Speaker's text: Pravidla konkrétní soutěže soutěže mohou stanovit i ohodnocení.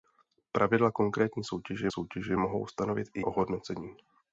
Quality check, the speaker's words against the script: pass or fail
pass